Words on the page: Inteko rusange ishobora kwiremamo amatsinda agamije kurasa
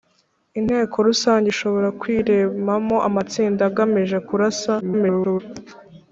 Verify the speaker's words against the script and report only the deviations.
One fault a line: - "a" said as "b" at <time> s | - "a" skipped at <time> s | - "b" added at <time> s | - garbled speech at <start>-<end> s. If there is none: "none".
- garbled speech at 4.8-5.4 s